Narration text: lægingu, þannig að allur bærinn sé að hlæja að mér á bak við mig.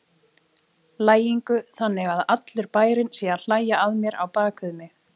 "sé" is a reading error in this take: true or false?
false